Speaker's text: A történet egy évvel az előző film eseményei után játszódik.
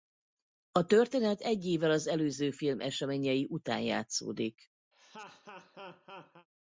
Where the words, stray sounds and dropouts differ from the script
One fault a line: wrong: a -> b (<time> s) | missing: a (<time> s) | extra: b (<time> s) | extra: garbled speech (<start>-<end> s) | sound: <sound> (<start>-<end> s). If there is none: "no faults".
sound: laugh (4.9-6.5 s)